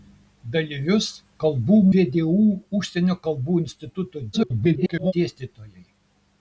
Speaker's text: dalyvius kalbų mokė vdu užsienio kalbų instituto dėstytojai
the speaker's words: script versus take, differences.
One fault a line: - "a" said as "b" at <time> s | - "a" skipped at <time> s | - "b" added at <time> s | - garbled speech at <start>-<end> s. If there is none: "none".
- "mokė" skipped at 1.8 s
- garbled speech at 4.3-5.1 s